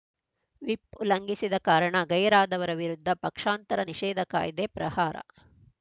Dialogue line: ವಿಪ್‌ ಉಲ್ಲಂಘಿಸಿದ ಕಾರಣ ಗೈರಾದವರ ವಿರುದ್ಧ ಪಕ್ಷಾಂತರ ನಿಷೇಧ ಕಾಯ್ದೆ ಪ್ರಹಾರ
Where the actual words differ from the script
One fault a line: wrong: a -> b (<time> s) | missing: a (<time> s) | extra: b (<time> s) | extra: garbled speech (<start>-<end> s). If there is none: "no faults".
no faults